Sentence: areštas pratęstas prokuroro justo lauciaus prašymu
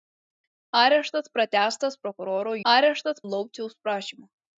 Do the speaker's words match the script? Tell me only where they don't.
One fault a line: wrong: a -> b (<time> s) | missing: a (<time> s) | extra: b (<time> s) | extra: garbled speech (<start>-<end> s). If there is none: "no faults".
wrong: justo -> areštas (2.7 s)